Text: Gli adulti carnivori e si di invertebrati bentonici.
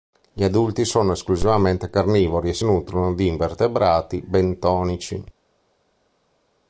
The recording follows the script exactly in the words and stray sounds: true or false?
false